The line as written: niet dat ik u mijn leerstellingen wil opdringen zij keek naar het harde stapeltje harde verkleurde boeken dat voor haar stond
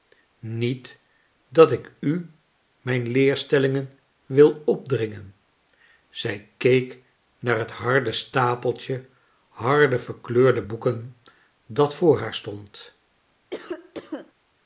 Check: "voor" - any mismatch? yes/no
no